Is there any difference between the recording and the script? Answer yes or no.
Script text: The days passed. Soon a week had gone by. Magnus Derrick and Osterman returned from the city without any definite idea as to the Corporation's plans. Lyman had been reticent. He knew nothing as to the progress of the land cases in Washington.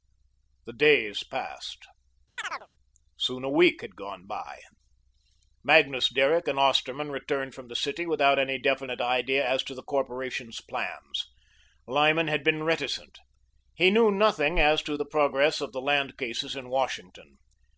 no